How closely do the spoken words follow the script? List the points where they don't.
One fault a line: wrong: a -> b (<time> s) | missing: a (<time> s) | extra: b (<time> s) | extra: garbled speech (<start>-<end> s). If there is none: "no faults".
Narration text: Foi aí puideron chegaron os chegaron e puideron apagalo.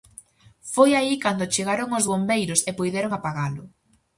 wrong: puideron -> cando (1.2 s)
wrong: chegaron -> bombeiros (2.1 s)